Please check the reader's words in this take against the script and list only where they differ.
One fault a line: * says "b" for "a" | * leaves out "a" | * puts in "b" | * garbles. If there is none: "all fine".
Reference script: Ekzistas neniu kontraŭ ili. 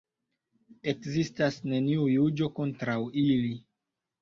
* puts in "juĝo"